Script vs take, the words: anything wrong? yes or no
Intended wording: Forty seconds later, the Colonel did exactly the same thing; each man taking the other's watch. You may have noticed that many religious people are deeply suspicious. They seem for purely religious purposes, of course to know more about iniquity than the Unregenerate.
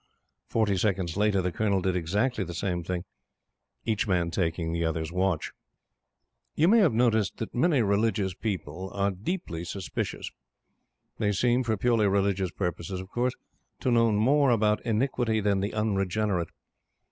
no